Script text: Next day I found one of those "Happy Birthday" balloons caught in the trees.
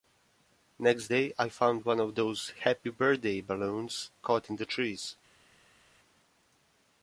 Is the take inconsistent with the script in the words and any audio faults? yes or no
no